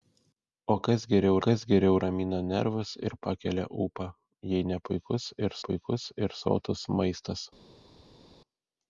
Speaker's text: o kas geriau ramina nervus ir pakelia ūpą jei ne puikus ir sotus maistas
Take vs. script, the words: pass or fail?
fail